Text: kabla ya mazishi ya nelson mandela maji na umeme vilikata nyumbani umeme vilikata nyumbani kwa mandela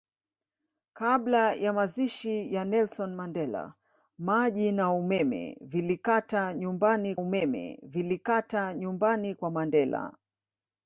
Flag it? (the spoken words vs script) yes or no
no